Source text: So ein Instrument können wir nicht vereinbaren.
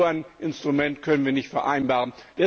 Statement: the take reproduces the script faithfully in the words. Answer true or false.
true